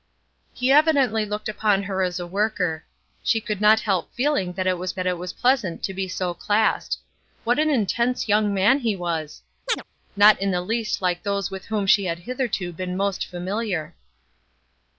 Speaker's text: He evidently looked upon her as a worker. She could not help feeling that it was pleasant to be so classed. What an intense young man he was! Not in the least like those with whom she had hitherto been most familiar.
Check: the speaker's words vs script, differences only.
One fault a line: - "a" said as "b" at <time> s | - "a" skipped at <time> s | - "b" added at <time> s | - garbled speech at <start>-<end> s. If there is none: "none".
- "that it was" added at 4.9 s